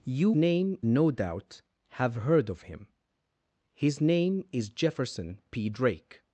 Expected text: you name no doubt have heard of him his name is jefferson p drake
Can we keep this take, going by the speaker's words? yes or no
yes